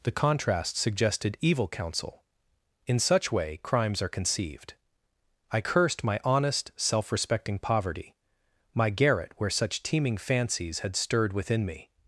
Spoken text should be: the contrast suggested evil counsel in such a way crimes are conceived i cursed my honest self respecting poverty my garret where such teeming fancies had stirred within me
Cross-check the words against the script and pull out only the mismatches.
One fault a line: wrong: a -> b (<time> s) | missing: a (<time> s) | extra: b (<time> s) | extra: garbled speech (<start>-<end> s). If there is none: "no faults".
missing: a (3.3 s)